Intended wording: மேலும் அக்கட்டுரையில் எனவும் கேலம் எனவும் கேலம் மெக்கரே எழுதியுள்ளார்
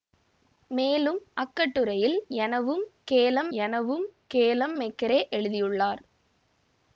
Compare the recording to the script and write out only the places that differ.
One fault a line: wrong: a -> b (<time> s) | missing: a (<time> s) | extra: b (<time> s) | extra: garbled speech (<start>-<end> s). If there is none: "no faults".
no faults